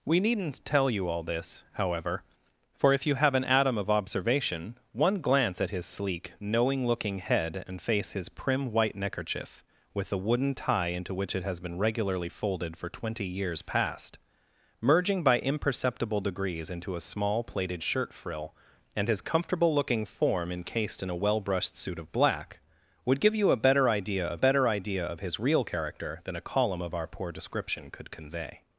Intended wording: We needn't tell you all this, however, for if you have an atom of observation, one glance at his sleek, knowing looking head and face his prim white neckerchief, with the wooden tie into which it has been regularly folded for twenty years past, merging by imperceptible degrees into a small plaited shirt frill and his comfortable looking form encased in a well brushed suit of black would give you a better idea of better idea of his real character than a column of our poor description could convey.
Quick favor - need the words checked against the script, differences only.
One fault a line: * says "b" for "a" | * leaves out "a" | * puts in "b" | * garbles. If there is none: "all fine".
all fine